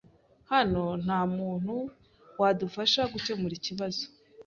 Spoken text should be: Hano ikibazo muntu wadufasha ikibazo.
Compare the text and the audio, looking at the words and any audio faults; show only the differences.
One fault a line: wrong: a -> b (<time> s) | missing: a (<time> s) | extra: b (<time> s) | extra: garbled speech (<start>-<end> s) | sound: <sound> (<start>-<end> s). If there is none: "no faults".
wrong: ikibazo -> nta (1.0 s)
extra: gukemura (3.1 s)